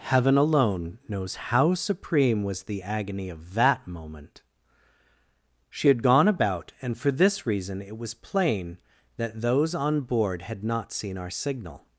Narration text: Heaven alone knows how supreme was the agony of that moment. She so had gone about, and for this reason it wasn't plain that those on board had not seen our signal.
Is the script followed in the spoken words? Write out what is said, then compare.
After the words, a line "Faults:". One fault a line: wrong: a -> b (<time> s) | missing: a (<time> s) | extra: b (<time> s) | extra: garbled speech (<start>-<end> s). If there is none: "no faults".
Heaven alone knows how supreme was the agony of that moment. She had gone about, and for this reason it was plain that those on board had not seen our signal.
Faults:
missing: so (5.9 s)
wrong: wasn't -> was (8.0 s)